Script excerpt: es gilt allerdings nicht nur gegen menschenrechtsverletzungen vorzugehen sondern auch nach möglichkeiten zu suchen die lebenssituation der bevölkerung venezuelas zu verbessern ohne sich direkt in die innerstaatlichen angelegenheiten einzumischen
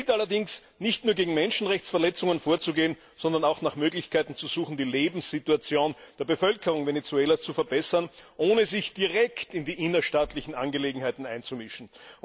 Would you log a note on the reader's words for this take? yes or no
no